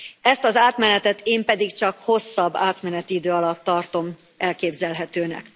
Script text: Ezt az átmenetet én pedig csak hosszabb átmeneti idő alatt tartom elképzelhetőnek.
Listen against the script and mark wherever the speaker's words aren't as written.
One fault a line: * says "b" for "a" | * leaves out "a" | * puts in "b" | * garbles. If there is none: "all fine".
all fine